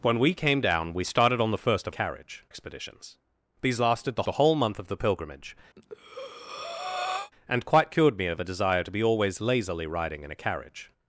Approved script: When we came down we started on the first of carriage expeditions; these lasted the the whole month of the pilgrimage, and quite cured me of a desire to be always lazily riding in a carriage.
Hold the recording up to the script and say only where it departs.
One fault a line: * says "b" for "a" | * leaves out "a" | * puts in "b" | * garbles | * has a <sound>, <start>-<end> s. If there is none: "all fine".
* has a breath, 5.8-7.3 s